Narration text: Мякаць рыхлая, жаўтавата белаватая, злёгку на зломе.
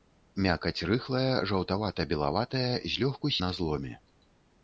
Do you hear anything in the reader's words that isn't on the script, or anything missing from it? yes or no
no